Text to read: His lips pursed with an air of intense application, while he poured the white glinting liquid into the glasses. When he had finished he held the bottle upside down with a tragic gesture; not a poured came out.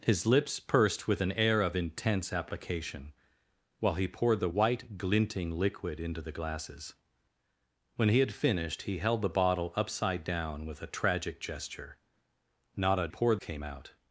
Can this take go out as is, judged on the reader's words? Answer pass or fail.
pass